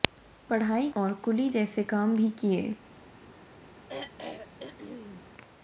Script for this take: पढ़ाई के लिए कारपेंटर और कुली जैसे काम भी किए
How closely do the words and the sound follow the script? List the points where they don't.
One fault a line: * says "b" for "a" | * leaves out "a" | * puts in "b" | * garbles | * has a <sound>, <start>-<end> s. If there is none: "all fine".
* leaves out "के लिए कारपेंटर"
* has a throat clearing, 3.9-5.3 s